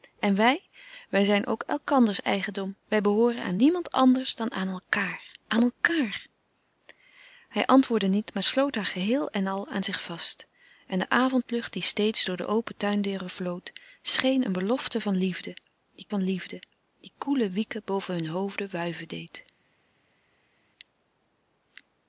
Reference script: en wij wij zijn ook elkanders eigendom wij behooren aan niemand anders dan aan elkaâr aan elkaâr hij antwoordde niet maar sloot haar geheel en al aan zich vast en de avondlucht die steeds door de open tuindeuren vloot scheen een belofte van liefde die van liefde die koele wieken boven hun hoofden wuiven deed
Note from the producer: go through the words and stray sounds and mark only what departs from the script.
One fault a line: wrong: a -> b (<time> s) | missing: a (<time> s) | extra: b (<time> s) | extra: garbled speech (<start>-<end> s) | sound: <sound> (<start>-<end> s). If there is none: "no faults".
no faults